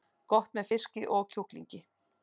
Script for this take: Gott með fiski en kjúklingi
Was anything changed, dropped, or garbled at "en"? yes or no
yes